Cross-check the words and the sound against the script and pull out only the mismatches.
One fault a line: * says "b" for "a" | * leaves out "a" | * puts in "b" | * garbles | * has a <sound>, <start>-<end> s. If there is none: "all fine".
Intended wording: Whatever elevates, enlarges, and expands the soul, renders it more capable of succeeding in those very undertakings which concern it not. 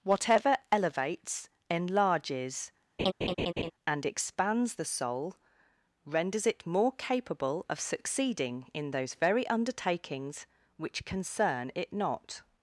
* has a laugh, 3.0-3.7 s